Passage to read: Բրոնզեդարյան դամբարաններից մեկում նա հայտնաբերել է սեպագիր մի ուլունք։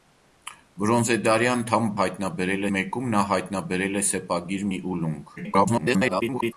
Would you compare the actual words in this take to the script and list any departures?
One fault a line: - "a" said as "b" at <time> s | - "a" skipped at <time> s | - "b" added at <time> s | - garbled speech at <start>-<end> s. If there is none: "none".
- "դամբարաններից" said as "հայտնաբերել" at 2.0 s
- garbled speech at 5.4-6.5 s